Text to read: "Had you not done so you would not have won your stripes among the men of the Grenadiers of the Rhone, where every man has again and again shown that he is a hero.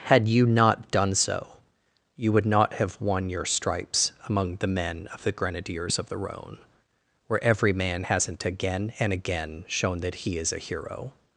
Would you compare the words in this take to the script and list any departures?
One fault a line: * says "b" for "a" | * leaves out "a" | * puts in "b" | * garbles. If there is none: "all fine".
* says "hasn't" for "has"